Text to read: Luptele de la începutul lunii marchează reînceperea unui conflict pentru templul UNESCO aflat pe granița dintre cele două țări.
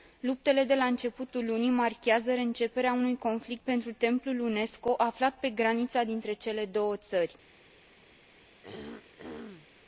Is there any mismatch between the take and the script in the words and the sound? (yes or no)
yes